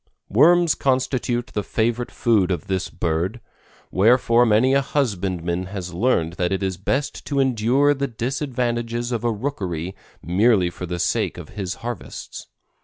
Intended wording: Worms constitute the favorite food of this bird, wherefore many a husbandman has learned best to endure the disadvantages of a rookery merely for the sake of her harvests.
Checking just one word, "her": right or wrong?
wrong